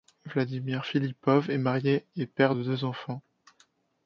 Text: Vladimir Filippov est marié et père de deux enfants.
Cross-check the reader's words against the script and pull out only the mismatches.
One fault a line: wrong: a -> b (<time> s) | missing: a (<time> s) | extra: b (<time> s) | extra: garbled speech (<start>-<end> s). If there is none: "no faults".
no faults